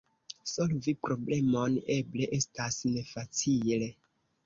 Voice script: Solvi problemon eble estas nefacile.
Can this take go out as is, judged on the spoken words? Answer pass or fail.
pass